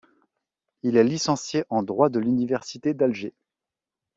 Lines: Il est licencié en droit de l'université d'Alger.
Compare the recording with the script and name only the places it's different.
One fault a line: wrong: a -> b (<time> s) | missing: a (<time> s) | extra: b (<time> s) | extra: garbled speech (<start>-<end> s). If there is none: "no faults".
no faults